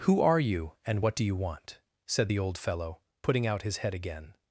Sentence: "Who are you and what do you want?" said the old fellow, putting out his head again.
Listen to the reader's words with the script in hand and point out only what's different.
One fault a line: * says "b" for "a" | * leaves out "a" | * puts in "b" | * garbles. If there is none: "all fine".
all fine